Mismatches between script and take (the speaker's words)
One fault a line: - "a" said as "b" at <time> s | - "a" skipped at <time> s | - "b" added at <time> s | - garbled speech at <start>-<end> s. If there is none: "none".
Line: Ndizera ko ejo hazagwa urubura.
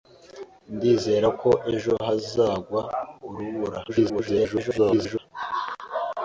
- garbled speech at 3.9-5.2 s